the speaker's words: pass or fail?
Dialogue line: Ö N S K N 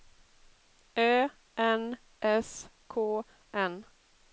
pass